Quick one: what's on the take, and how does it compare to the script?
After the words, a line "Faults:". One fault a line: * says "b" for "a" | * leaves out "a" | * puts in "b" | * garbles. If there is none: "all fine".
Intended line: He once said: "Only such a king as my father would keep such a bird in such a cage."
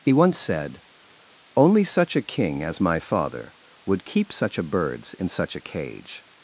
He once said: "Only such a king as my father would keep such a birds in such a cage."
Faults:
* says "birds" for "bird"